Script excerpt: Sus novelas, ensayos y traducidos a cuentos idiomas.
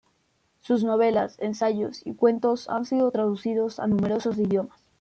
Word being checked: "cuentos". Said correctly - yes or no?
no